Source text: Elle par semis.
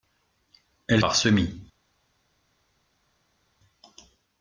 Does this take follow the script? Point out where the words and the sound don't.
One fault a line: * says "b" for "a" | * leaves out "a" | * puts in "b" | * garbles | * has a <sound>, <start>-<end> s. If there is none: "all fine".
all fine